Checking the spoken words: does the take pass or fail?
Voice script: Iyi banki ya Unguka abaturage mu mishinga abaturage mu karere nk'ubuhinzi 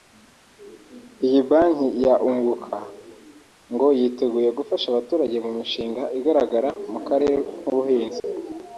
fail